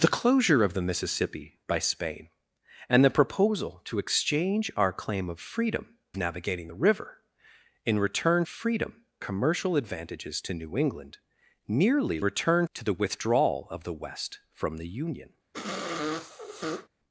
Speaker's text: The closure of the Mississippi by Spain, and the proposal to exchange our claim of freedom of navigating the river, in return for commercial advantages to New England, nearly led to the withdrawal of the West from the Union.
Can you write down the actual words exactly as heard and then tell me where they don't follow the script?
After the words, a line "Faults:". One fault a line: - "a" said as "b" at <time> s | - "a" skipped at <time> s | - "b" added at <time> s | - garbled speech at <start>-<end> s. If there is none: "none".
The closure of the Mississippi by Spain, and the proposal to exchange our claim of freedom navigating the river, in return freedom commercial advantages to New England, nearly return to the withdrawal of the West from the Union.
Faults:
- "of" skipped at 6.0 s
- "for" said as "freedom" at 8.5 s
- "led" said as "return" at 12.2 s